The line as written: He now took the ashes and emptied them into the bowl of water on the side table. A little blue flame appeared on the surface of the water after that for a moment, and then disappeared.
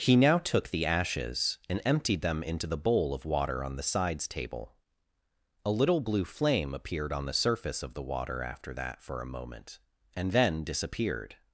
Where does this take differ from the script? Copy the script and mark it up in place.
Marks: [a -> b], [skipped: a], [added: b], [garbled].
He now took the ashes and emptied them into the bowl of water on the [side -> sides] table. A little blue flame appeared on the surface of the water after that for a moment, and then disappeared.